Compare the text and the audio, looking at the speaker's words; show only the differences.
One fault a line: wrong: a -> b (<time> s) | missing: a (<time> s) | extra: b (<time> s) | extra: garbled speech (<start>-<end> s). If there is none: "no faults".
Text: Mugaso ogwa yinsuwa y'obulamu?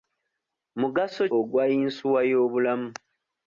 no faults